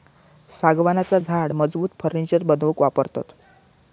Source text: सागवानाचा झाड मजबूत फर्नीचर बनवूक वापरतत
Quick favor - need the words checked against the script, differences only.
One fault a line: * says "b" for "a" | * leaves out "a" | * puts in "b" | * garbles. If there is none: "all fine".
all fine